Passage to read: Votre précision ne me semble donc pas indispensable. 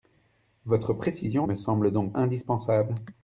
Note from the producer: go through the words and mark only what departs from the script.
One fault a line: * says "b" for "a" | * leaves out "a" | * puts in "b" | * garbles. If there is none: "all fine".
* leaves out "ne"
* leaves out "pas"